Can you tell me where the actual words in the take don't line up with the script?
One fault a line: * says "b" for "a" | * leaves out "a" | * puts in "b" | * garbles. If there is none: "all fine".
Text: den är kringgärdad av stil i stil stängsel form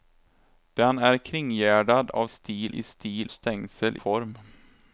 all fine